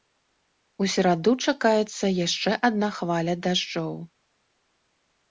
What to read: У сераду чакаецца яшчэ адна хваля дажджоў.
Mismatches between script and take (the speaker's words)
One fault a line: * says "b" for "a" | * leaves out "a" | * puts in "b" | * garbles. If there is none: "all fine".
all fine